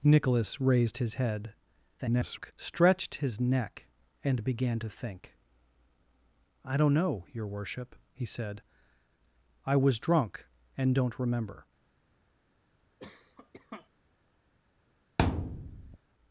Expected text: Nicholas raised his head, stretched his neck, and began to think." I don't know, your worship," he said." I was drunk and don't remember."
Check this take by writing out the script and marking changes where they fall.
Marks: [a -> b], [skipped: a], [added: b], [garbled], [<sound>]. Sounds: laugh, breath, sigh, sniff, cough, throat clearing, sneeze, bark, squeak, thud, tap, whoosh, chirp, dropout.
Nicholas raised his head, [garbled] stretched his neck, and began to think." I don't know, your worship," he said." I was drunk and don't remember." [cough] [thud]